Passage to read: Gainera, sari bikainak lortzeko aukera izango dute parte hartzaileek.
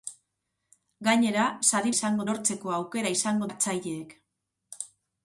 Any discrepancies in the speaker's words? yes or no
yes